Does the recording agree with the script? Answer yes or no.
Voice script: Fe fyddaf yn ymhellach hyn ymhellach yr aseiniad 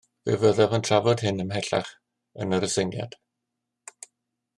no